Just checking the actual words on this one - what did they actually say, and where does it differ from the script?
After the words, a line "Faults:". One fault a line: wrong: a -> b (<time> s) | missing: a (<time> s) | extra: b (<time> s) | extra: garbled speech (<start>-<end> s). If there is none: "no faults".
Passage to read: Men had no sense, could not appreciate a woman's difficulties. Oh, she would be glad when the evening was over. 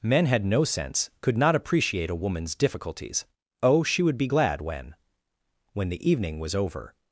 Men had no sense, could not appreciate a woman's difficulties. Oh, she would be glad when when the evening was over.
Faults:
extra: when (5.7 s)